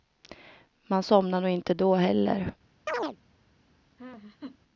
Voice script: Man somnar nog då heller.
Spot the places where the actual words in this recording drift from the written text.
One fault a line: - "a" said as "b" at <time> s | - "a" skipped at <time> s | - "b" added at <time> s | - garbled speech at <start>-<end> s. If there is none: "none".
- "inte" added at 1.5 s